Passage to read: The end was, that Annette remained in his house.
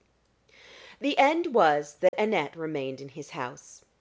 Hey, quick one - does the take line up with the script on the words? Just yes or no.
yes